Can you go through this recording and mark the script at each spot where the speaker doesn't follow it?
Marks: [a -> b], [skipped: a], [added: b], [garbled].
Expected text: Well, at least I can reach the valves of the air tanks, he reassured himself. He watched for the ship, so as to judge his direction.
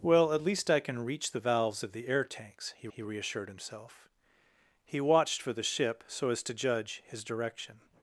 Well, at least I can reach the valves of the air tanks, he [added: he] reassured himself. He watched for the ship, so as to judge his direction.